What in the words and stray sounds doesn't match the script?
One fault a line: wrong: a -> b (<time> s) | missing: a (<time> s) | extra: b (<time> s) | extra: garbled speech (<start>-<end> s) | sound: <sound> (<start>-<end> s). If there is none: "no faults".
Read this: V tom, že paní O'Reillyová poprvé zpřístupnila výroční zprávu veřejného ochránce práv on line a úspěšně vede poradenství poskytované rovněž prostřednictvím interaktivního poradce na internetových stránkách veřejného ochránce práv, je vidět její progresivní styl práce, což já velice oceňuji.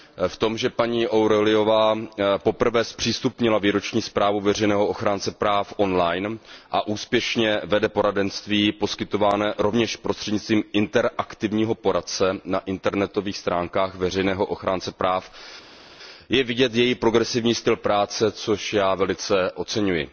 no faults